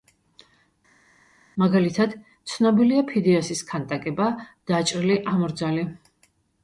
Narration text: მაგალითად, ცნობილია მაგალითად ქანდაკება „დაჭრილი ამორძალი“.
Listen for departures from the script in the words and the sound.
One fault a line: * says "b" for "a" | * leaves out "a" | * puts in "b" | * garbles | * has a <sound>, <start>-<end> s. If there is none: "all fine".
* says "ფიდიასის" for "მაგალითად"